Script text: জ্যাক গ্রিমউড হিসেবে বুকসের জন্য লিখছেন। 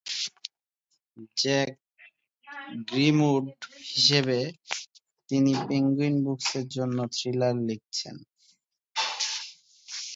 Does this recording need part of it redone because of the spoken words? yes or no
yes